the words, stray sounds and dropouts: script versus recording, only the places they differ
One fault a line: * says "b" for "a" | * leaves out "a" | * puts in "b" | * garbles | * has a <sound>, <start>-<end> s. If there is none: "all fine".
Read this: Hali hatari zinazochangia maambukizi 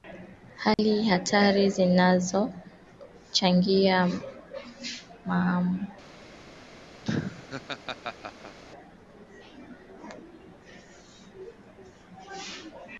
* has a dropout, 0.7-0.8 s
* has a laugh, 7.0-8.6 s